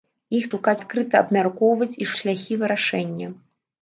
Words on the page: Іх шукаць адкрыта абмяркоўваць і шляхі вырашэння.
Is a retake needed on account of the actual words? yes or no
no